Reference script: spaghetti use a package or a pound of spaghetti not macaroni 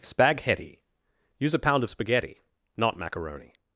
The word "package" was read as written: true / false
false